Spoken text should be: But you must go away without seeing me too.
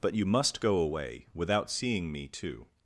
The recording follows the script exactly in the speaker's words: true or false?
true